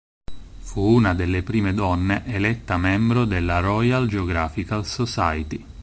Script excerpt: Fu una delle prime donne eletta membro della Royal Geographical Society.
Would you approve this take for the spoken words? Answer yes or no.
yes